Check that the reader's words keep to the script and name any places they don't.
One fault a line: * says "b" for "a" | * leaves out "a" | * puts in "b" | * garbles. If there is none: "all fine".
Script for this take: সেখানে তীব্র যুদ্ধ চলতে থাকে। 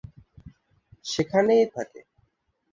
* leaves out "তীব্র যুদ্ধ চলতে"